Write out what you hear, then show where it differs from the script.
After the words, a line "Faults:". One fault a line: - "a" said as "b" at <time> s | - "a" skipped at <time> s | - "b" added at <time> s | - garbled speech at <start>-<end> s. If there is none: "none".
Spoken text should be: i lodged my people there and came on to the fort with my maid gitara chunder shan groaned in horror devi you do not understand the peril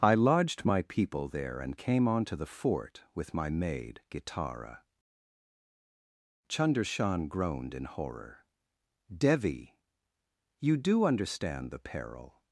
i lodged my people there and came on to the fort with my maid gitara chunder shan groaned in horror devi you do understand the peril
Faults:
- "not" skipped at 11.0 s